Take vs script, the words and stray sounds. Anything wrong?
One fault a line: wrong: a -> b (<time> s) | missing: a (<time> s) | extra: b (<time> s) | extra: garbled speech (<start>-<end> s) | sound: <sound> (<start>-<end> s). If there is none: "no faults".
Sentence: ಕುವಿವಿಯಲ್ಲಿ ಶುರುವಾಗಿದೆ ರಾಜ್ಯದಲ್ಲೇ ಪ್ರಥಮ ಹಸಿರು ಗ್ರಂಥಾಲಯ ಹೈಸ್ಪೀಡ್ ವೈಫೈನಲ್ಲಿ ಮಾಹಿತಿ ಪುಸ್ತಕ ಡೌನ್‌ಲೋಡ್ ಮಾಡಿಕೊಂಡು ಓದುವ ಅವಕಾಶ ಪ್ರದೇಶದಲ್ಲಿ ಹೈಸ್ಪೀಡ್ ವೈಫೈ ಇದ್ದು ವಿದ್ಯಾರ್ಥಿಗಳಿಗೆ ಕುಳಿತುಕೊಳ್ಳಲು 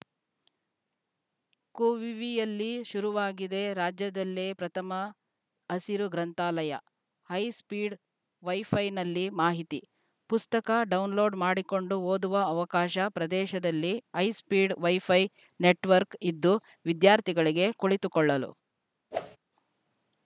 extra: ನೆಟ್‌ವರ್ಕ್ (15.6 s)
sound: whoosh (19.1-19.4 s)